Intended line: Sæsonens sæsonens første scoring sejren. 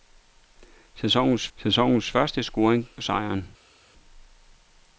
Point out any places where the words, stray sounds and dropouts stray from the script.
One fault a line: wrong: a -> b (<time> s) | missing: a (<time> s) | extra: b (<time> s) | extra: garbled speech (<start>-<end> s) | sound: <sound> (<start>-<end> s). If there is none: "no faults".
no faults